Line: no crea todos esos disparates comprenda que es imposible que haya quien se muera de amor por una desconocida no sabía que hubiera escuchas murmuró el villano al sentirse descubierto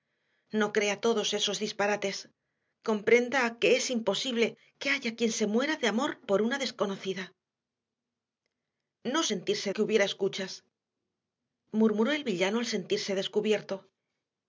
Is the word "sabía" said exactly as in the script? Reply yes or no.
no